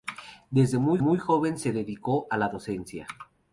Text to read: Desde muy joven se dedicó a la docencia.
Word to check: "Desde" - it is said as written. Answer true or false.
true